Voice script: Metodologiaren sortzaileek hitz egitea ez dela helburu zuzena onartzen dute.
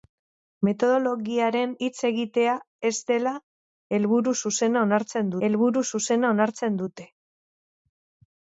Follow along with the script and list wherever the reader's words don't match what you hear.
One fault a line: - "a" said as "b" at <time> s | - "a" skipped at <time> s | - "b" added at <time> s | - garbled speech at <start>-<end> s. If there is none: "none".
- "sortzaileek" skipped at 1.8 s
- "helburu zuzena onartzen" added at 5.5 s